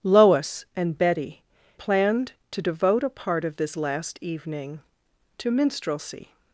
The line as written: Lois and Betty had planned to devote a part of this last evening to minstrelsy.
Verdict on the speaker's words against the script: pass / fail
fail